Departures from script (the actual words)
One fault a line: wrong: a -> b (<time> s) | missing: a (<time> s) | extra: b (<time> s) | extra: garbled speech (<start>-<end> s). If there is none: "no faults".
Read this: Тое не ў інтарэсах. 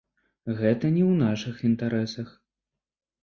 wrong: Тое -> Гэта (0.6 s)
extra: нашых (1.2 s)